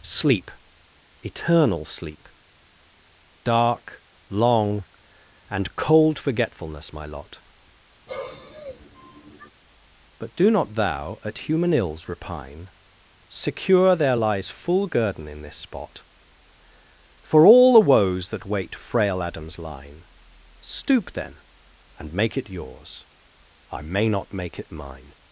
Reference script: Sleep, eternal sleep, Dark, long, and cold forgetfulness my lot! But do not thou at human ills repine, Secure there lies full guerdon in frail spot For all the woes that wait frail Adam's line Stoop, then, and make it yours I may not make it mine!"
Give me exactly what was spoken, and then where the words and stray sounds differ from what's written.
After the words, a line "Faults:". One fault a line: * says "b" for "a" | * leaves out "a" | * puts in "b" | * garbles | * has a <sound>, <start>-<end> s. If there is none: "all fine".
Sleep, eternal sleep, Dark, long, and cold forgetfulness my lot! But do not thou at human ills repine, Secure there lies full guerdon in this spot For all the woes that wait frail Adam's line Stoop, then, and make it yours I may not make it mine!"
Faults:
* has a sigh, 8.1-9.5 s
* says "this" for "frail"